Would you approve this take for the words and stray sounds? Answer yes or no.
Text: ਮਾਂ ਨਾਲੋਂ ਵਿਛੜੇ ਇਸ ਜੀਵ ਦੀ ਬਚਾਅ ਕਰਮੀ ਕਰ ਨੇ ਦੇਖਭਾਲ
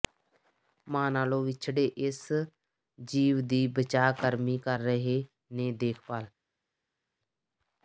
no